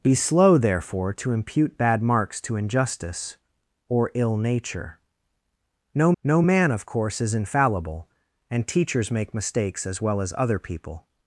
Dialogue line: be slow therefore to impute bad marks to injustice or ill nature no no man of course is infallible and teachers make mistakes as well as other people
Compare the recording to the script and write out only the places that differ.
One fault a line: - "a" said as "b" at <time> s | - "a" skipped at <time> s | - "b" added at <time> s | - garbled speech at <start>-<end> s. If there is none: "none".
none